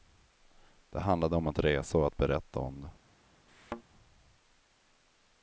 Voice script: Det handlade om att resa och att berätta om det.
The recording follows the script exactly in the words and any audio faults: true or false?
false